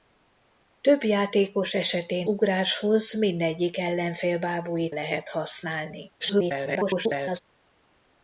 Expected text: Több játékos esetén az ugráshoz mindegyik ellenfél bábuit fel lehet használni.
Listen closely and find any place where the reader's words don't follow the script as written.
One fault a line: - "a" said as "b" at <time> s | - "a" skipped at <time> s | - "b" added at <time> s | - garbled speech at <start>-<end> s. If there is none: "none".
- "az" skipped at 2.3 s
- "fel" skipped at 5.0 s
- garbled speech at 6.2-7.4 s